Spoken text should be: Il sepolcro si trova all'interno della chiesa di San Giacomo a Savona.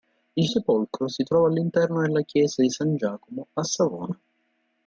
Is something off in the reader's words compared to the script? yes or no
no